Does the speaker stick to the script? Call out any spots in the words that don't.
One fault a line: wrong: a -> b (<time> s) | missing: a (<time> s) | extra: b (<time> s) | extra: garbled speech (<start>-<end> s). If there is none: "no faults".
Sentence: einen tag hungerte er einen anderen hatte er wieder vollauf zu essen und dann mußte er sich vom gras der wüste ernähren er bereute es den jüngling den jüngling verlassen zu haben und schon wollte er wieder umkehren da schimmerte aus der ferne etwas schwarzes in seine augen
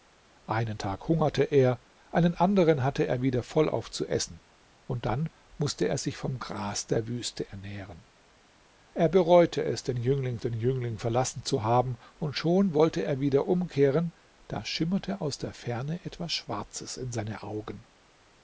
no faults